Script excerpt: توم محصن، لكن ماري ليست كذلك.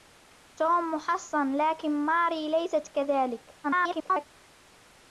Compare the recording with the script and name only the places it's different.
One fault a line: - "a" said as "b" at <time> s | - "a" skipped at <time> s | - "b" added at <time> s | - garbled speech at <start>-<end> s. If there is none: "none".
- garbled speech at 3.6-4.3 s